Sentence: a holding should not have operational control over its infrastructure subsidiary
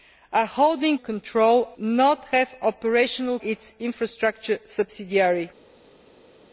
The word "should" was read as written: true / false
false